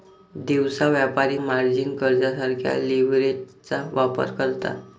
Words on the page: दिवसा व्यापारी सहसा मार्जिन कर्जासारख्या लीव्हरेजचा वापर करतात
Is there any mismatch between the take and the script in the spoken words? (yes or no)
yes